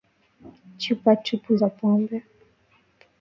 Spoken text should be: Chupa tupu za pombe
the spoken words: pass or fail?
pass